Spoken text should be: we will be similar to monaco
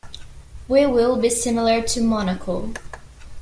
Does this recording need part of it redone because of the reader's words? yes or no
no